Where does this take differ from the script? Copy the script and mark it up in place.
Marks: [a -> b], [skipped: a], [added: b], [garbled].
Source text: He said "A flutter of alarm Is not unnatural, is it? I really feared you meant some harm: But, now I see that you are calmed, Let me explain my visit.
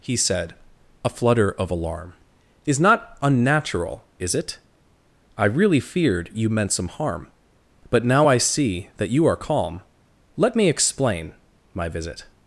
He said "A flutter of alarm Is not unnatural, is it? I really feared you meant some harm: But, now I see that you are [calmed, -> calm] Let me explain my visit.